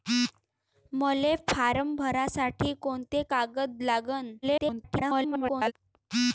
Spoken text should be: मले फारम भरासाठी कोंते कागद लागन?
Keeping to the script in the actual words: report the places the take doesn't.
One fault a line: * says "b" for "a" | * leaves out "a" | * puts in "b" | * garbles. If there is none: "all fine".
* garbles